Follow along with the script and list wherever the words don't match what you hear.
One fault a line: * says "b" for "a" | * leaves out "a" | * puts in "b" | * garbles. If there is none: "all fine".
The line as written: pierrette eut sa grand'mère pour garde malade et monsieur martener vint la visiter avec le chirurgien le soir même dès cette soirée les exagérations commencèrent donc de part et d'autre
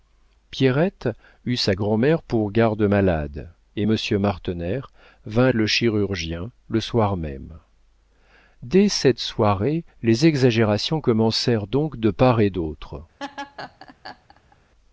* leaves out "la visiter avec"